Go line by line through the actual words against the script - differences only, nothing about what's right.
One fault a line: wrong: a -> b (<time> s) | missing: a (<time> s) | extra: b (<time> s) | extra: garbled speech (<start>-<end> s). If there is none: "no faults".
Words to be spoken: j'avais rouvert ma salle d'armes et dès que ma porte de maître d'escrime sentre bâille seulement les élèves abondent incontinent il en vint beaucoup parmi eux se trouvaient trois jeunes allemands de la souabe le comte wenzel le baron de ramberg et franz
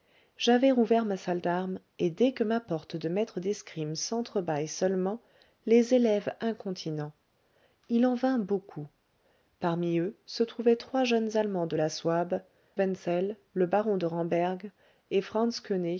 missing: abondent (6.3 s)
missing: le comte (12.4 s)